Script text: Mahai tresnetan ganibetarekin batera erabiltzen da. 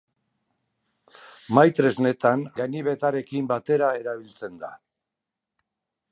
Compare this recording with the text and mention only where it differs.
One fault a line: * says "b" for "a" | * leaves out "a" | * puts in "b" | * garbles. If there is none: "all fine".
all fine